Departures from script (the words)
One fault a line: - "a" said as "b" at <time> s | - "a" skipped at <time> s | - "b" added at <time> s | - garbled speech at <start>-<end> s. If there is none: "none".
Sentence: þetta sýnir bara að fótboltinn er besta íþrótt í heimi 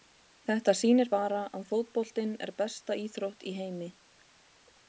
none